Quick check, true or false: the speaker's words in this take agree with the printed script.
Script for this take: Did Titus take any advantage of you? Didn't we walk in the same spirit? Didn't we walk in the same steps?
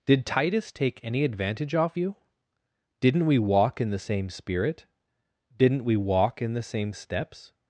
false